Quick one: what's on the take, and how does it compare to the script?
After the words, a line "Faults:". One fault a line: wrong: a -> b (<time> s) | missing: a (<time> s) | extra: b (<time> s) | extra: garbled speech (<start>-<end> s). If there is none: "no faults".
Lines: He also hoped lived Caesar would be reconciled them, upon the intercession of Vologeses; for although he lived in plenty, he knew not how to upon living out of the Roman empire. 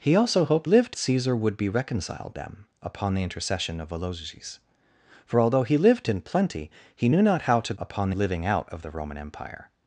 He also hoped lived Caesar would be reconciled them, upon the intercession of Vologeses; for although he lived in plenty, he knew not how to upon living out of the Roman empire.
Faults:
no faults